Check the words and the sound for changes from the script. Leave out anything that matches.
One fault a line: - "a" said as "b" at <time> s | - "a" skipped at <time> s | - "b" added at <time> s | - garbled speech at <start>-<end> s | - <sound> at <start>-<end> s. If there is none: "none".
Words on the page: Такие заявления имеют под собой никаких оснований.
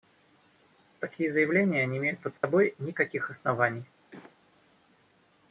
- "не" added at 1.9 s
- dropout at 2.4-2.4 s
- cough at 4.1-4.4 s